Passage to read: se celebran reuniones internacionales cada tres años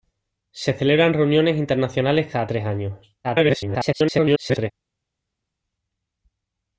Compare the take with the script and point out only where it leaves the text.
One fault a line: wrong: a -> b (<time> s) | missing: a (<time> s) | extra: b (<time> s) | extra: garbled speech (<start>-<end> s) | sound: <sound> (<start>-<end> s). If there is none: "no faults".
extra: garbled speech (3.2-4.7 s)